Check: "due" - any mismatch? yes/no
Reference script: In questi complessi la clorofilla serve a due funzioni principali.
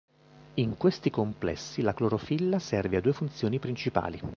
no